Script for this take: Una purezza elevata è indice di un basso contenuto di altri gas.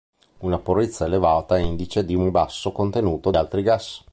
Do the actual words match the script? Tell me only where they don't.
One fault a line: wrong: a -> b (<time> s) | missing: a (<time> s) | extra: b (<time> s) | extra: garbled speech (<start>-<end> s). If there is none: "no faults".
missing: di (3.3 s)